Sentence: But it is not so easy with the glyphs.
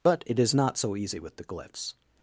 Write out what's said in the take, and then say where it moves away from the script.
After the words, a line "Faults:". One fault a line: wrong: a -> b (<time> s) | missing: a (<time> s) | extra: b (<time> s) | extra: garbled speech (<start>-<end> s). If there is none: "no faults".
But it is not so easy with the glyphs.
Faults:
no faults